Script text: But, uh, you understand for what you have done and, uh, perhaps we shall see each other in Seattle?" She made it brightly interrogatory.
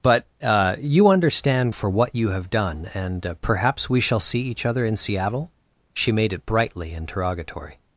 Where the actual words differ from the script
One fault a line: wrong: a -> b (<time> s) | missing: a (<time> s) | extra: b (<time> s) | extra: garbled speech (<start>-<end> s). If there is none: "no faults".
no faults